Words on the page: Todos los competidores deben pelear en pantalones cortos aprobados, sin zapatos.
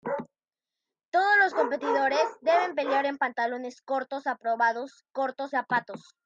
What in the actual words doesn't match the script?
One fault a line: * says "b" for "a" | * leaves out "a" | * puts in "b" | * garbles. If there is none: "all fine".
* says "cortos" for "sin"